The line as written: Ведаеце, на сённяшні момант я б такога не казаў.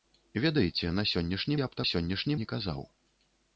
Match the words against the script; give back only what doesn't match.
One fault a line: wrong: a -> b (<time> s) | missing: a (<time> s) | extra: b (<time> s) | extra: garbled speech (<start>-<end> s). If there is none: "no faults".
missing: момант (1.6 s)
wrong: такога -> сённяшні (1.9 s)